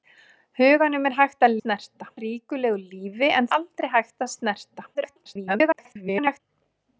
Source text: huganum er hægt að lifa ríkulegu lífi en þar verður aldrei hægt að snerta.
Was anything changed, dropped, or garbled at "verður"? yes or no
yes